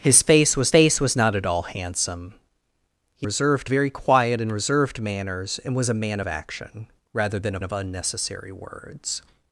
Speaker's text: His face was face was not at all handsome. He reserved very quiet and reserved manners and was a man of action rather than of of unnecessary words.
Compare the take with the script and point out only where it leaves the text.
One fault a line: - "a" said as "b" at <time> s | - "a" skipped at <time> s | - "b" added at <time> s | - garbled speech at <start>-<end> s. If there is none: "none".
none